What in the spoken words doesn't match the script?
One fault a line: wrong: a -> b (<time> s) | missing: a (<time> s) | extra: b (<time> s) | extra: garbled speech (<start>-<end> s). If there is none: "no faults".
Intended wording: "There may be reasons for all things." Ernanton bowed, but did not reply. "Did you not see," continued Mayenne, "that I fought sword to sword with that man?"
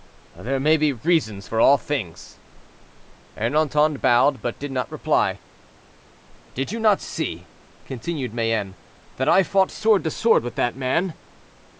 no faults